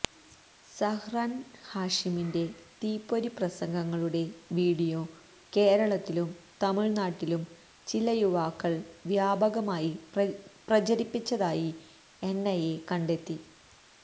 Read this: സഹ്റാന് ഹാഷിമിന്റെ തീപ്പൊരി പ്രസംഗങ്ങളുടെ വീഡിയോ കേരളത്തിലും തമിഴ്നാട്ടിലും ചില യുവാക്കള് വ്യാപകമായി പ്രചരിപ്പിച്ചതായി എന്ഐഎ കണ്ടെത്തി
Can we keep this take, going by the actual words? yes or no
yes